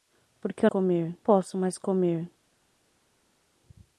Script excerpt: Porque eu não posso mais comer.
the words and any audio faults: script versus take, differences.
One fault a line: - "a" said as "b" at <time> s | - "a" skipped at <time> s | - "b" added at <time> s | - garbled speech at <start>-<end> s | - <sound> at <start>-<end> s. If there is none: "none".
- "não" said as "comer" at 0.7 s